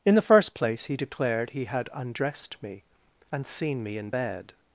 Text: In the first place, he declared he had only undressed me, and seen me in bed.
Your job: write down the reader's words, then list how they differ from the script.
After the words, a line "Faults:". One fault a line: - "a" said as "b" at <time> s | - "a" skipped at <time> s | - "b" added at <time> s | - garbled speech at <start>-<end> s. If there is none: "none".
In the first place, he declared he had undressed me, and seen me in bed.
Faults:
- "only" skipped at 1.9 s